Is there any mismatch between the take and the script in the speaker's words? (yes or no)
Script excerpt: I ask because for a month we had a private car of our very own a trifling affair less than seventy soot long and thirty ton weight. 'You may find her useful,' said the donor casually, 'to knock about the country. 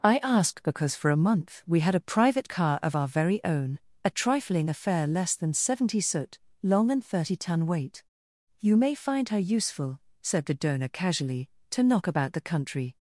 no